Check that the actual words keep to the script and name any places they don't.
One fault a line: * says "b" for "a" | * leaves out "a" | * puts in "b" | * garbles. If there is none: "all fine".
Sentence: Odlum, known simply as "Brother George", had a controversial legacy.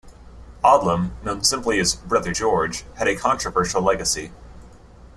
all fine